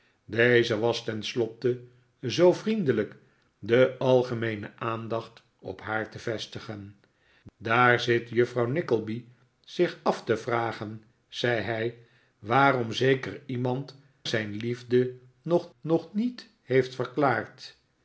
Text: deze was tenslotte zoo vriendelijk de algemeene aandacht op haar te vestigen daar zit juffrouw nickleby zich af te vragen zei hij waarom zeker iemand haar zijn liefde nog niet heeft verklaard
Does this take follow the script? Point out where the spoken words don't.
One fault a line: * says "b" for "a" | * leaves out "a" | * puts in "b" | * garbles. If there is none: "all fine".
* leaves out "haar"
* puts in "nog"